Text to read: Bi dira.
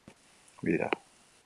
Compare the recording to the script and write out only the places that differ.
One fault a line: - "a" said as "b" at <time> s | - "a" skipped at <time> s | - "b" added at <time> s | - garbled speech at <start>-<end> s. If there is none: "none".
none